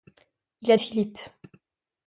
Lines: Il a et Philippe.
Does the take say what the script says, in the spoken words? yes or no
yes